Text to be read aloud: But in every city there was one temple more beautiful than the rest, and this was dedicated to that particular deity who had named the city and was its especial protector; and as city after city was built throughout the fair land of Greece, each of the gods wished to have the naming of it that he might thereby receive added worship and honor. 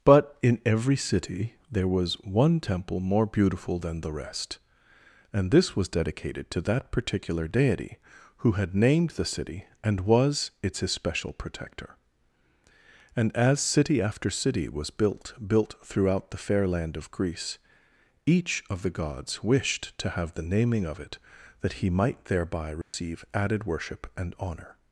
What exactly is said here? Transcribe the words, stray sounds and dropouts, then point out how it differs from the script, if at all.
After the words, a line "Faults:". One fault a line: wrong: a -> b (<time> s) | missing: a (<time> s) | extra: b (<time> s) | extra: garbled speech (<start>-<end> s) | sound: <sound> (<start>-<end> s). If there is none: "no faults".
But in every city there was one temple more beautiful than the rest, and this was dedicated to that particular deity who had named the city and was its especial protector; and as city after city was built built throughout the fair land of Greece, each of the gods wished to have the naming of it that he might thereby receive added worship and honor.
Faults:
extra: built (15.5 s)
sound: dropout (22.8-22.9 s)